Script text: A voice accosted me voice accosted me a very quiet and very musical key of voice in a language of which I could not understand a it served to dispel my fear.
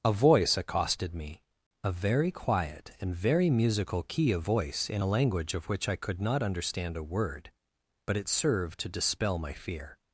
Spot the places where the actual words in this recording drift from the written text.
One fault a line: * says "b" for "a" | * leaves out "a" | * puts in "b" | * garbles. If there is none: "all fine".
* leaves out "voice accosted me"
* puts in "word but"